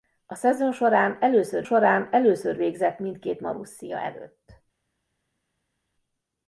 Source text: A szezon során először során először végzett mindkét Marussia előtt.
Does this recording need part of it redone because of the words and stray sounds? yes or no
no